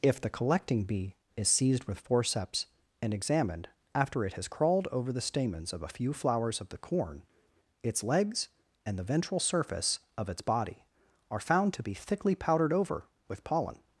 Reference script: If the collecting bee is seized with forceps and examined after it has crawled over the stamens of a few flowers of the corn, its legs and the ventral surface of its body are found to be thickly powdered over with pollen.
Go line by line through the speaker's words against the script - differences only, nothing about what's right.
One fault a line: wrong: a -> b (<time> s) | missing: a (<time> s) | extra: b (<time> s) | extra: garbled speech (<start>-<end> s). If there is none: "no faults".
no faults